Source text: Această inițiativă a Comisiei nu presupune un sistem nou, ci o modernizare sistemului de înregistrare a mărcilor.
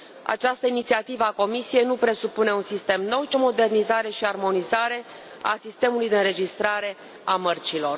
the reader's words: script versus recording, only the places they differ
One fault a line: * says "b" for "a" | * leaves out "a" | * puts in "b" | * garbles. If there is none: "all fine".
* puts in "și armonizare a"